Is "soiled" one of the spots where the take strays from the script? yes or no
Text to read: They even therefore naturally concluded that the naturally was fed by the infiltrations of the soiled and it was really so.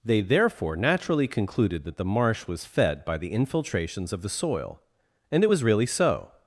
yes